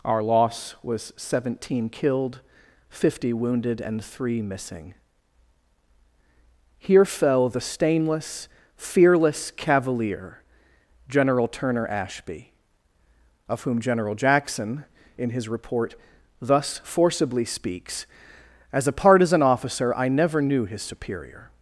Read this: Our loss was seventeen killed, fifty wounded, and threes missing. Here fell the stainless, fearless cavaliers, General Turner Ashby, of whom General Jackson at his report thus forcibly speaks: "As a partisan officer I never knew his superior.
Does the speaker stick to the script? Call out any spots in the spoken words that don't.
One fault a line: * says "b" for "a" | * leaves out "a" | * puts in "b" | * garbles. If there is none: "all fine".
* says "three" for "threes"
* says "cavalier" for "cavaliers"
* says "in" for "at"